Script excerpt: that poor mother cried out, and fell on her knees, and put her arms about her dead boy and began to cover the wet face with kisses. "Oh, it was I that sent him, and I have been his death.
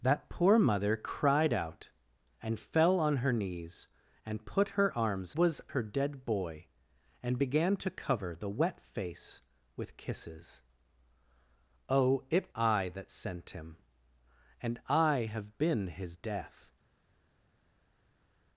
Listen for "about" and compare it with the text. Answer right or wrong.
wrong